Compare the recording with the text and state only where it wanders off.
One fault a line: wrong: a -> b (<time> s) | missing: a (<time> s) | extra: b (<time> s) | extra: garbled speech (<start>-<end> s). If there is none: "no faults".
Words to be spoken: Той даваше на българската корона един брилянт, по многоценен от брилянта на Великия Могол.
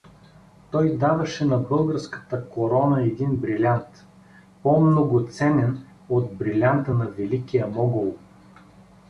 no faults